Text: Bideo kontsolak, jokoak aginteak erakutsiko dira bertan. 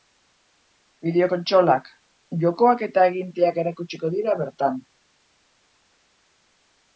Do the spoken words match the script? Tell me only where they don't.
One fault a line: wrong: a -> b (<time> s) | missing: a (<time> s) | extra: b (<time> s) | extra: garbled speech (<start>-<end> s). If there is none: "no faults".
extra: eta (2.9 s)